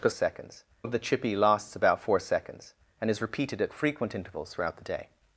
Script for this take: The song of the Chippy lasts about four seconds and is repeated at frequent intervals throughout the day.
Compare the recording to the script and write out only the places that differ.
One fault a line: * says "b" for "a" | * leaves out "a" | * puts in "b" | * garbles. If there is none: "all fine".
* says "seconds" for "song"